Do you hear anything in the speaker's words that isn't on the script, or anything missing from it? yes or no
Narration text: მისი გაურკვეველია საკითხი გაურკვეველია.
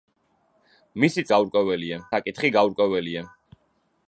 no